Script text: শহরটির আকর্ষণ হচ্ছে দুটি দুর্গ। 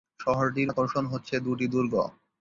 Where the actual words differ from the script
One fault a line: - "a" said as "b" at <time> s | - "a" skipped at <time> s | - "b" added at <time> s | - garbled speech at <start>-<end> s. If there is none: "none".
none